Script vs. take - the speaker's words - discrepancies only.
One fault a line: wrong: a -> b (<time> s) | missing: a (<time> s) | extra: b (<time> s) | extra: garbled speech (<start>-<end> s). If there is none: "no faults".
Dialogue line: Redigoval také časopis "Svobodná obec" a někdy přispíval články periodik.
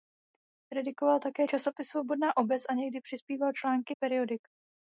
no faults